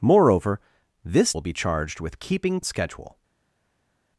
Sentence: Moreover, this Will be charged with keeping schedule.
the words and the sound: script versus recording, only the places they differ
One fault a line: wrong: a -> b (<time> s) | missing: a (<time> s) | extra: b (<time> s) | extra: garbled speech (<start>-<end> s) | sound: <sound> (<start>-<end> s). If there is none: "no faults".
no faults